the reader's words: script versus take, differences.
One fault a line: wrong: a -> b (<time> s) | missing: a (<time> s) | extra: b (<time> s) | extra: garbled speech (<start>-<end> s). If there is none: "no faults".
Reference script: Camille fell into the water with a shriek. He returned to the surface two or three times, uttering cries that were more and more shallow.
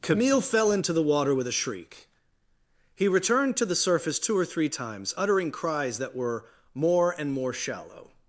no faults